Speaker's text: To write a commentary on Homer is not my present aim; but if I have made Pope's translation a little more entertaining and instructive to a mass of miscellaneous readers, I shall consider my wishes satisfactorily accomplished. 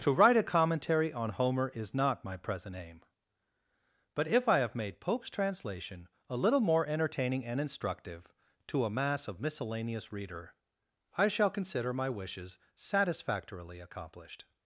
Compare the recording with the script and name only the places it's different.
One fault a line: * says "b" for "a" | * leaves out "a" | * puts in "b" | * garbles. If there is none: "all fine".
* says "reader" for "readers"